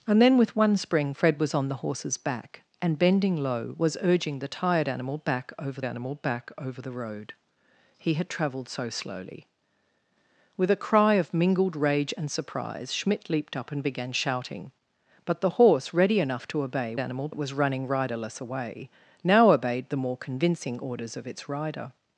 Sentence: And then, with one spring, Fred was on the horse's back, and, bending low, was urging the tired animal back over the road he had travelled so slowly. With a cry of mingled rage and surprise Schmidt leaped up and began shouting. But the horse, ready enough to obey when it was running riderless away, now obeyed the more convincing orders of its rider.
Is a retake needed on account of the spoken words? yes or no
yes